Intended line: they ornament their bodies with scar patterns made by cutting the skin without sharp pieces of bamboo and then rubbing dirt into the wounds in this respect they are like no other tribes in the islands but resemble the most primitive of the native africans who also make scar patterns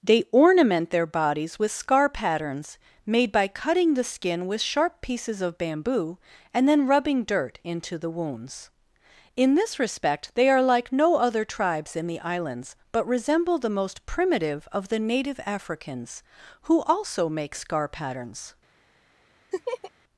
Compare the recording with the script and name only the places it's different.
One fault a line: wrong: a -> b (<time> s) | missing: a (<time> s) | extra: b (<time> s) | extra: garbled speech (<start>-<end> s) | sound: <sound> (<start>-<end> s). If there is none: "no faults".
wrong: without -> with (4.5 s)
sound: laugh (19.5-19.9 s)